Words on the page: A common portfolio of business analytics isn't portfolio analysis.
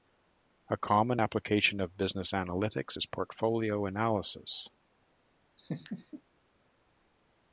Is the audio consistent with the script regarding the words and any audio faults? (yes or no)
no